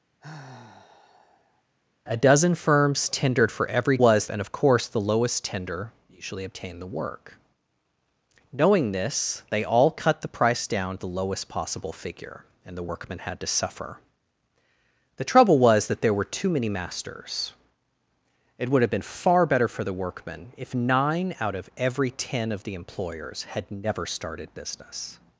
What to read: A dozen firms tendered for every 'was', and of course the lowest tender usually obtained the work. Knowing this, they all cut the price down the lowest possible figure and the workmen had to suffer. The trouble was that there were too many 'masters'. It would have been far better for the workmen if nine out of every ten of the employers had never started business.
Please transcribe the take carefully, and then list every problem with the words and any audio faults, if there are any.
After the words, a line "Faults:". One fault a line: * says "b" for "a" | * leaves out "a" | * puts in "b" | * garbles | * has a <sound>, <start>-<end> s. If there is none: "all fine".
A dozen firms tendered for every 'was', and of course the lowest tender usually obtained the work. Knowing this, they all cut the price down the lowest possible figure and the workmen had to suffer. The trouble was that there were too many 'masters'. It would have been far better for the workmen if nine out of every ten of the employers had never started business.
Faults:
* has a sigh, 0.2-1.6 s